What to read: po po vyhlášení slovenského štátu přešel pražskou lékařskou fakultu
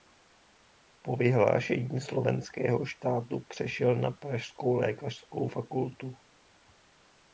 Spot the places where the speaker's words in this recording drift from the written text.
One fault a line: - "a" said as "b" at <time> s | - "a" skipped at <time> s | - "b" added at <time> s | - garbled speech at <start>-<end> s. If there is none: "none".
- "po" skipped at 1.1 s
- "na" added at 4.0 s